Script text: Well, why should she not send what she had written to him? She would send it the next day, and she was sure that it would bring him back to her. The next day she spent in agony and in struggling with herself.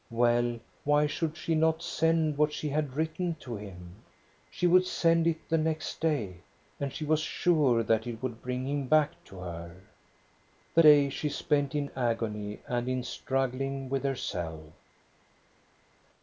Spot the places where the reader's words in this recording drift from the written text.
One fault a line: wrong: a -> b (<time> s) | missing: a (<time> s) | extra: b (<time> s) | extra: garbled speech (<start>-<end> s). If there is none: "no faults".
missing: next (10.8 s)